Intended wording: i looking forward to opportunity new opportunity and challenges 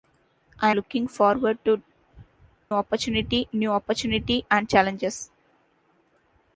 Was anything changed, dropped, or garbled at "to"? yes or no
no